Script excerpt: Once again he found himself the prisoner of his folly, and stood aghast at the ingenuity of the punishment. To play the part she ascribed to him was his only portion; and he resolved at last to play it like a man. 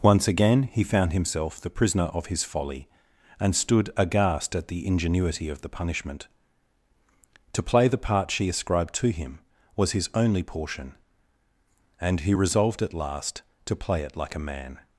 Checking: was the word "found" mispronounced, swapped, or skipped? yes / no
no